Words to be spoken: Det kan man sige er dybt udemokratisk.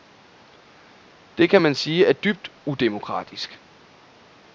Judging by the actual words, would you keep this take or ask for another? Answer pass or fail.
pass